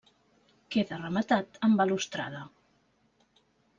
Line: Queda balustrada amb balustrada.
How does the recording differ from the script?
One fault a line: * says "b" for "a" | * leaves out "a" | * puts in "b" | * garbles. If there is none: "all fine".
* says "rematat" for "balustrada"